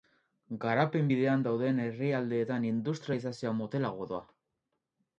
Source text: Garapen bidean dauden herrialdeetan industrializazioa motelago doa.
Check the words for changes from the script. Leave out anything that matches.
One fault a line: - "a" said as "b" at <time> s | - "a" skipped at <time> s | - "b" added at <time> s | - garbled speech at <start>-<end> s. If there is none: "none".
none